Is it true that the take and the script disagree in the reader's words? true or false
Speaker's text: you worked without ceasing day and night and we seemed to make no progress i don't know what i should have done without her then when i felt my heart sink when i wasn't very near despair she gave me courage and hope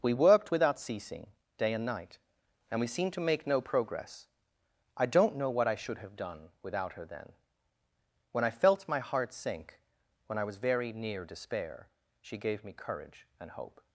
true